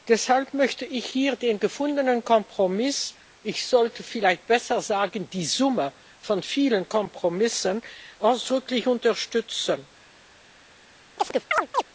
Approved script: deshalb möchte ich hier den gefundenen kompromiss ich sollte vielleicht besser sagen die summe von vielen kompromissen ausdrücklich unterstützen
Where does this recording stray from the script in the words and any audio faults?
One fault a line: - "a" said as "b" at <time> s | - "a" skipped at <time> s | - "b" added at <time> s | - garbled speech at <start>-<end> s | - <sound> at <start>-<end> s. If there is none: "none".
- chirp at 11.2-11.8 s